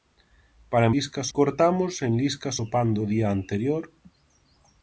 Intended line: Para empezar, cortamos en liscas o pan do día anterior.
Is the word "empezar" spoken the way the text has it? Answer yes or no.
no